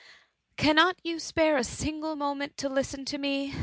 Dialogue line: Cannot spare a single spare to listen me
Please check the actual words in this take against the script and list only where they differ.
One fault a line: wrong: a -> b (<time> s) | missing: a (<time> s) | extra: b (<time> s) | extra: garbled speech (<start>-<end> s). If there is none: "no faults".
extra: you (1.0 s)
wrong: spare -> moment (2.1 s)
extra: to (3.1 s)